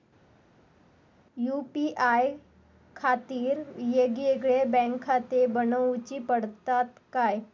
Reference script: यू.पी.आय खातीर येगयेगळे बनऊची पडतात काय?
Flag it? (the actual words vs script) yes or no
yes